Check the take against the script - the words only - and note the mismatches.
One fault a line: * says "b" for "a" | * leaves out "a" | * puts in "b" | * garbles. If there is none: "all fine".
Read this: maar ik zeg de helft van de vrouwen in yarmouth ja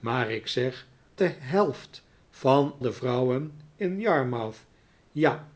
all fine